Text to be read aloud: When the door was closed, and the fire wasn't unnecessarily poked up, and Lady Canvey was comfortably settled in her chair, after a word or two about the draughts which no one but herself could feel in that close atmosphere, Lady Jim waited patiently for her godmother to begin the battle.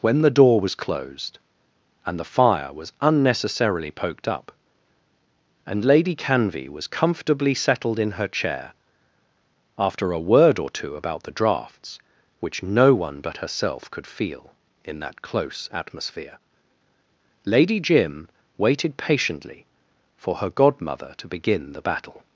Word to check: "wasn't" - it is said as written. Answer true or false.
false